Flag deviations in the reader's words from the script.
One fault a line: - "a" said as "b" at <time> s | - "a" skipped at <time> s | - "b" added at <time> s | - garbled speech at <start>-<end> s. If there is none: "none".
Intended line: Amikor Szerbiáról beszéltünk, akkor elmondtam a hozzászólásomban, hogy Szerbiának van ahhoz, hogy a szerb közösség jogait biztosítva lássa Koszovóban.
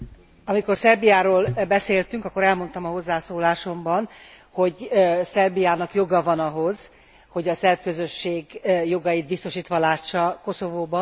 - "joga" added at 5.9 s